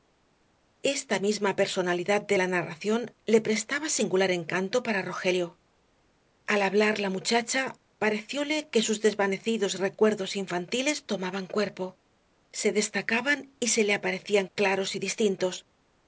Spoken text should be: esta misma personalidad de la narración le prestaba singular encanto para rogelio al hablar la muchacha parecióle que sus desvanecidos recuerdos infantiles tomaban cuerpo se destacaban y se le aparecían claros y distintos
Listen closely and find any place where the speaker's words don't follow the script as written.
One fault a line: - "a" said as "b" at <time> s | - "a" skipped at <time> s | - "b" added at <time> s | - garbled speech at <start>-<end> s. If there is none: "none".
none